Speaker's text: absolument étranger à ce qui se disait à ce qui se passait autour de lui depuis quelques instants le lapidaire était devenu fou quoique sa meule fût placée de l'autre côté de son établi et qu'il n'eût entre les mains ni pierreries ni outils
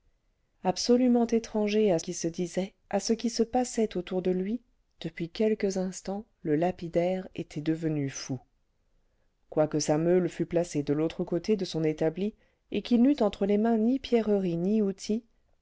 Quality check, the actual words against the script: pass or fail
fail